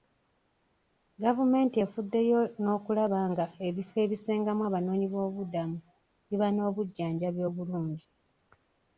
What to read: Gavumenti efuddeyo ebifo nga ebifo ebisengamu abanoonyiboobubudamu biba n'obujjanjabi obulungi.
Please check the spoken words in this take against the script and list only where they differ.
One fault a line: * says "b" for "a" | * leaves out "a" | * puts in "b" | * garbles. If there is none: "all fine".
* says "n'okulaba" for "ebifo"